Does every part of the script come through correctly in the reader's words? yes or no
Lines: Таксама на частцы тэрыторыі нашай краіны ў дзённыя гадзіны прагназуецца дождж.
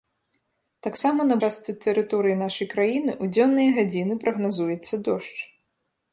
yes